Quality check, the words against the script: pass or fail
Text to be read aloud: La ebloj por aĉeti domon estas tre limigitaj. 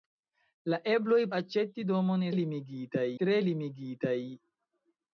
fail